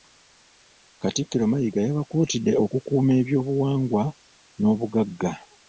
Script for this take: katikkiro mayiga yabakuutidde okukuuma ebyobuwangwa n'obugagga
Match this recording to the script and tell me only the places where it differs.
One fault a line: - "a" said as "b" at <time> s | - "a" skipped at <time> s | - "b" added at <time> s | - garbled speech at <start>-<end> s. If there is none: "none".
none